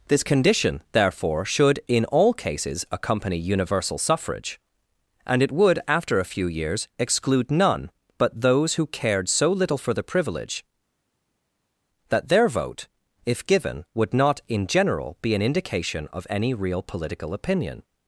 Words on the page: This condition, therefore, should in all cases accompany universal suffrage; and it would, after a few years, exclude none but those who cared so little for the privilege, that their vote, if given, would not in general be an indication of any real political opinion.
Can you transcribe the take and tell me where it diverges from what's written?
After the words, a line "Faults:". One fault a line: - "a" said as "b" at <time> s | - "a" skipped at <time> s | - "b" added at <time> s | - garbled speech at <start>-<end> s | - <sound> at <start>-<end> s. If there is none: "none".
This condition, therefore, should in all cases accompany universal suffrage; and it would, after a few years, exclude none but those who cared so little for the privilege, that their vote, if given, would not in general be an indication of any real political opinion.
Faults:
none